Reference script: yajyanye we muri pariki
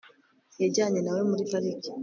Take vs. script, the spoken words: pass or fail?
fail